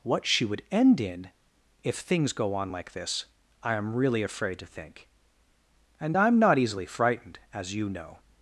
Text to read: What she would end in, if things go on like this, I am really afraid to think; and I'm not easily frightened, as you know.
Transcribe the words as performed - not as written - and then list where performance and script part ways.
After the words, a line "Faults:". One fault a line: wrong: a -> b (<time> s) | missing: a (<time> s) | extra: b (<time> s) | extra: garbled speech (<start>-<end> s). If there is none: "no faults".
What she would end in, if things go on like this, I am really afraid to think; and I'm not easily frightened, as you know.
Faults:
no faults